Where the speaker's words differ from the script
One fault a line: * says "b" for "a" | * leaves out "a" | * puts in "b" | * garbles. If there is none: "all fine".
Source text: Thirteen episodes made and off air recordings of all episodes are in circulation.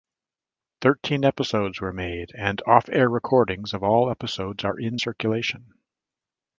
* puts in "were"